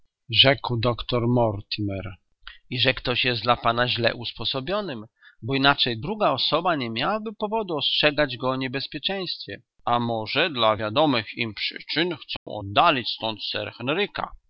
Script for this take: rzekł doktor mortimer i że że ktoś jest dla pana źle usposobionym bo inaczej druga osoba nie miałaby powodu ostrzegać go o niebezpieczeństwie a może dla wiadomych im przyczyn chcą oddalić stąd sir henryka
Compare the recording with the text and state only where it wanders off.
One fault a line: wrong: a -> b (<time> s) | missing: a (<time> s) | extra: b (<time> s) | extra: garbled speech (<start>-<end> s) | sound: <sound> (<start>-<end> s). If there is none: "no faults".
missing: że (2.9 s)
sound: dropout (12.4-12.5 s)